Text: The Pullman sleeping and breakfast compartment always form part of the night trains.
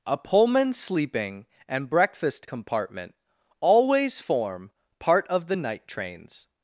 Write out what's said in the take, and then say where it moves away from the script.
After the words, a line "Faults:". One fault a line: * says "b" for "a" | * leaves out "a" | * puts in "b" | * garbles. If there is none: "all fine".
A Pullman sleeping and breakfast compartment always form part of the night trains.
Faults:
* says "A" for "The"